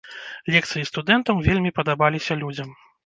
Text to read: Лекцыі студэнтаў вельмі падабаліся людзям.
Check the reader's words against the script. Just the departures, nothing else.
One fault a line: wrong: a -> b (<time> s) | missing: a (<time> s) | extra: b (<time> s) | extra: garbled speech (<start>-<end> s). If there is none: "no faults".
no faults